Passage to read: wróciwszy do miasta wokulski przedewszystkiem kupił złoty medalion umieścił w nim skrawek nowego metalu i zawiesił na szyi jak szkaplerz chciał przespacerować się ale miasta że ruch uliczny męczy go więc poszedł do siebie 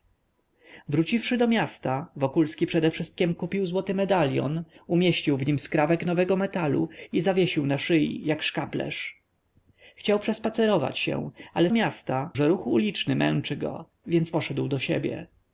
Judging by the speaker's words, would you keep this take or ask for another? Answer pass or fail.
pass